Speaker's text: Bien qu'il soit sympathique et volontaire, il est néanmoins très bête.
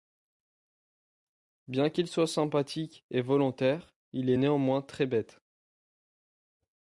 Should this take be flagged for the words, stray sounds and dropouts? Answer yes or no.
no